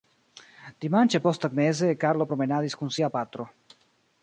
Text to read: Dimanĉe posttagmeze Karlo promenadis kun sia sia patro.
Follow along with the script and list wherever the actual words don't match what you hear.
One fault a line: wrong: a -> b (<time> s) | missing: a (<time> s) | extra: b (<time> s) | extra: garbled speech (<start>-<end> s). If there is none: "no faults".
missing: sia (3.1 s)